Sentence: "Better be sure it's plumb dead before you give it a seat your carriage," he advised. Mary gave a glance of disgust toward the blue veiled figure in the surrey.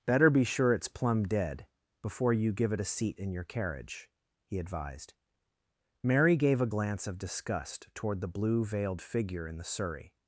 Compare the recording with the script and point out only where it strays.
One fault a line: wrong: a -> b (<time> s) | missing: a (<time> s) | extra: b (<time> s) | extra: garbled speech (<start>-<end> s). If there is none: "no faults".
extra: in (3.2 s)